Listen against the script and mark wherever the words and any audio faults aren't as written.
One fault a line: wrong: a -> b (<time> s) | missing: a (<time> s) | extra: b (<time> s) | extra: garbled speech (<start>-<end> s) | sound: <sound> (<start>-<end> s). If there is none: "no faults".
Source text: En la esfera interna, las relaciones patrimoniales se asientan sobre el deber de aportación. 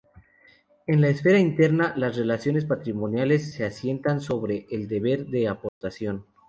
sound: dropout (5.7-5.8 s)